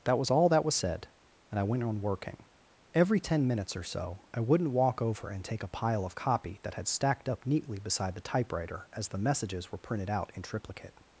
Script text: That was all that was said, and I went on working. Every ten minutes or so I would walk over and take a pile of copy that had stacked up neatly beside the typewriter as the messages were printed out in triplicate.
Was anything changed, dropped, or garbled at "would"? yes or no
yes